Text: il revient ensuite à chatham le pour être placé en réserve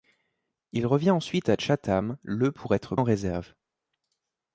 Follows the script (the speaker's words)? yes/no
no